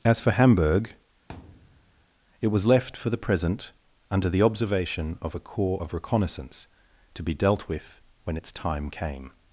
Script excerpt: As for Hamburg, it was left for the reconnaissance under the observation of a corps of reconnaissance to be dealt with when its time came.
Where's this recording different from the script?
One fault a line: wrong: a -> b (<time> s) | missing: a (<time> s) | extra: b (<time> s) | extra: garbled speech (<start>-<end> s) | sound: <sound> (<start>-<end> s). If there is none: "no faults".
sound: thud (1.3-2.1 s)
wrong: reconnaissance -> present (3.2 s)